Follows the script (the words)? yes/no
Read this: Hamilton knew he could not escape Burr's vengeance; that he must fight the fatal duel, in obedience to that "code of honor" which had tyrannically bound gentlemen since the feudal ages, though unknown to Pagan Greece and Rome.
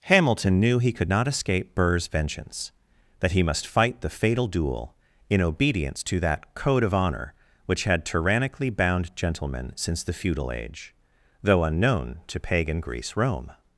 no